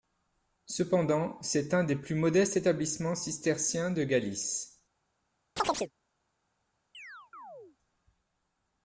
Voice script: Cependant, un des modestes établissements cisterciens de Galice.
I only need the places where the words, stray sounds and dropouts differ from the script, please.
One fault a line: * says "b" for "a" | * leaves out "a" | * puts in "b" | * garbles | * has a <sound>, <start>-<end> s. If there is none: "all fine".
* puts in "c'est"
* puts in "plus"
* has a chirp, 5.6-5.9 s
* has a chirp, 6.9-7.8 s